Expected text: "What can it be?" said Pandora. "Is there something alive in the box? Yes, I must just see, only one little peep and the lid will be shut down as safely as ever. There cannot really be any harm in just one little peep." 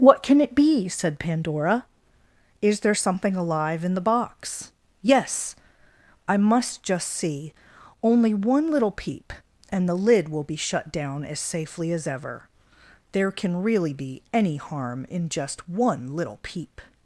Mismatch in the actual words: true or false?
true